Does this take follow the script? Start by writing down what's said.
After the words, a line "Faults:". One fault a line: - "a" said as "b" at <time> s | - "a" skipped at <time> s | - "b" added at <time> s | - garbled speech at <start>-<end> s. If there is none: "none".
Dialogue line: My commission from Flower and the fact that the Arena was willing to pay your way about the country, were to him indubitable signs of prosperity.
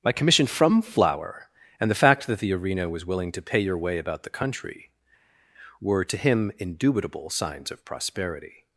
My commission from Flower and the fact that the Arena was willing to pay your way about the country, were to him indubitable signs of prosperity.
Faults:
none